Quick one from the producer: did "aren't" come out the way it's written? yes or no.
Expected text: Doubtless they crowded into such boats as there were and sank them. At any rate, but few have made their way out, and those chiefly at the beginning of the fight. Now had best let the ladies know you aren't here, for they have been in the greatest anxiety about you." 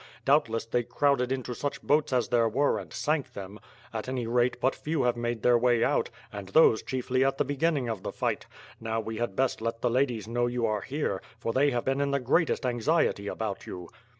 no